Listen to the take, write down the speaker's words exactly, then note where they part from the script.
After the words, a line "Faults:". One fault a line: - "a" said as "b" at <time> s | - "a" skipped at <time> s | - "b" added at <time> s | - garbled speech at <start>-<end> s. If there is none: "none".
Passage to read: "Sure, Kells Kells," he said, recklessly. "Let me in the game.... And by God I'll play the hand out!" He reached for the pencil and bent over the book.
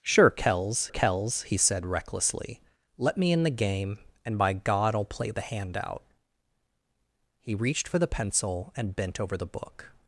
"Sure, Kells Kells," he said, recklessly. "Let me in the game.... And by God I'll play the hand out!" He reached for the pencil and bent over the book.
Faults:
none